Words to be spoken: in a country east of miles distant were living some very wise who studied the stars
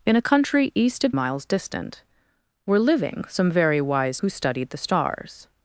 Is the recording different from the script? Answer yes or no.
no